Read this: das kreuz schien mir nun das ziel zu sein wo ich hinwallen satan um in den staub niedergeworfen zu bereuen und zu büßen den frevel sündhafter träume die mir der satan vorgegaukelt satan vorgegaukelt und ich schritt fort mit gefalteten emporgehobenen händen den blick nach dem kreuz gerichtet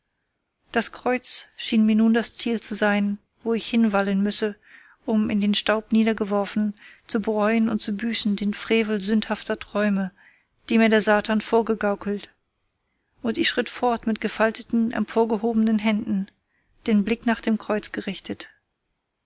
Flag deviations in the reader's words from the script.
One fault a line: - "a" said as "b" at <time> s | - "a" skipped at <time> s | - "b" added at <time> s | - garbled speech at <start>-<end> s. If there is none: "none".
- "satan" said as "müsse" at 4.2 s
- "satan vorgegaukelt" skipped at 12.3 s